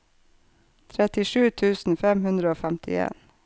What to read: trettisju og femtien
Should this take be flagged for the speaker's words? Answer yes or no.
yes